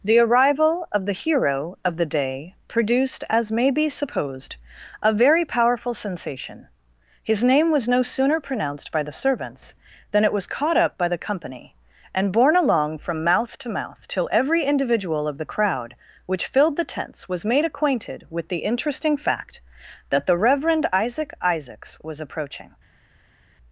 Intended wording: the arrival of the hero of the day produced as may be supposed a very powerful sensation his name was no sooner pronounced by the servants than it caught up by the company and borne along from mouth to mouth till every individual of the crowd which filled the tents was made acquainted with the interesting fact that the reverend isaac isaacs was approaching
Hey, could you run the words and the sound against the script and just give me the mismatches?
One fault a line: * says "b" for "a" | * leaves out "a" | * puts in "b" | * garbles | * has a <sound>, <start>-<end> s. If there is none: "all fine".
* puts in "was"